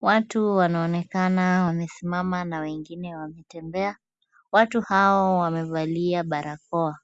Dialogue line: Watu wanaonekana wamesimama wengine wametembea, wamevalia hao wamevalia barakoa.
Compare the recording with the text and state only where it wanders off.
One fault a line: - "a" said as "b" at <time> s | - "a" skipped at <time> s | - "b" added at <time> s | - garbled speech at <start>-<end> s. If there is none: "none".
- "na" added at 2.4 s
- "wamevalia" said as "watu" at 4.5 s